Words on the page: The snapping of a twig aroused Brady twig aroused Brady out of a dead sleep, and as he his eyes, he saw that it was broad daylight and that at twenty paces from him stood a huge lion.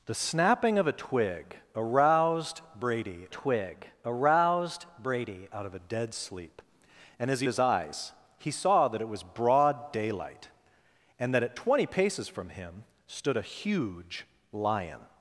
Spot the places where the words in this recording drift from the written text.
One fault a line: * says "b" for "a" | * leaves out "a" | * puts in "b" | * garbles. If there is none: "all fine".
all fine